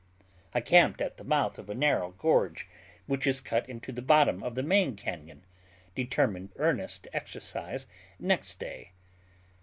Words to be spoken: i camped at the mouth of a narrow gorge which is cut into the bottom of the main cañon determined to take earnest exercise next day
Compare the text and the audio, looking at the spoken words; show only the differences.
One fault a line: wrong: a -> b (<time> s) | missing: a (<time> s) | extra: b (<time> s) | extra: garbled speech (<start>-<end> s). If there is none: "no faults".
missing: to take (6.5 s)